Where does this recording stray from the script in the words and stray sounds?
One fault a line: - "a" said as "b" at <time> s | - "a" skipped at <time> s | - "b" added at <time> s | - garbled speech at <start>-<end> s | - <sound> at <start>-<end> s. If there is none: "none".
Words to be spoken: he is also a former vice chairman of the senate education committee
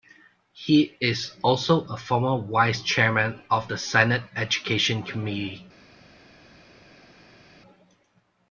none